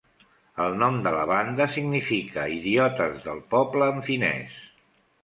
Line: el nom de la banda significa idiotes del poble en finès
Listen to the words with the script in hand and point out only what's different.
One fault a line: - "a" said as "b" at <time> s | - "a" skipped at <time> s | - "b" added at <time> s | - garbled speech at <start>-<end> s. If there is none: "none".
none